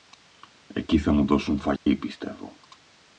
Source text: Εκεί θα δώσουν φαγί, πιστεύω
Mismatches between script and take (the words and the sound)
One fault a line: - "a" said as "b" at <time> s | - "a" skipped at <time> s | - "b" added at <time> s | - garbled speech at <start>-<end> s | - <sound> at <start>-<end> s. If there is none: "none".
- "μου" added at 1.1 s
- dropout at 1.8-1.9 s